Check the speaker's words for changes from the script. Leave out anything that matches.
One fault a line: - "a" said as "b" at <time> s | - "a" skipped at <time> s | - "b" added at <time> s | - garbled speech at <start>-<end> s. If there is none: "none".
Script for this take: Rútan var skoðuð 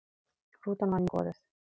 none